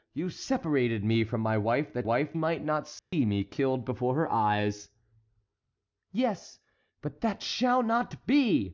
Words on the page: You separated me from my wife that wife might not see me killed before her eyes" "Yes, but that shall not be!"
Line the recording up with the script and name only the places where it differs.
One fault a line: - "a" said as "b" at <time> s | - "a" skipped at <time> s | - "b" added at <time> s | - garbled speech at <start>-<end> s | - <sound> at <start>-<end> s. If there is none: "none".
- dropout at 3.0-3.1 s